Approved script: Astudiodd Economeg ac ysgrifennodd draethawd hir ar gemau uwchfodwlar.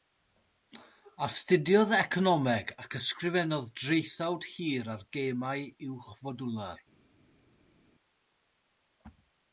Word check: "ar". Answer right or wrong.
right